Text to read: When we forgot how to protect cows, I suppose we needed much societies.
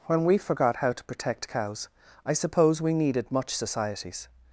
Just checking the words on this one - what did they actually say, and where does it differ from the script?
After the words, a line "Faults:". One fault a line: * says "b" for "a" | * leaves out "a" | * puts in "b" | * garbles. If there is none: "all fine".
When we forgot how to protect cows, I suppose we needed much societies.
Faults:
all fine